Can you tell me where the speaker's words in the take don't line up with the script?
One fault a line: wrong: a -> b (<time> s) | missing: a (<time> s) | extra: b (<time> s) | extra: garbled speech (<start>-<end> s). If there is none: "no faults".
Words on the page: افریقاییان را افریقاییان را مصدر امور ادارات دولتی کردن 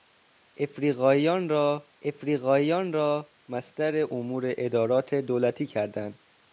no faults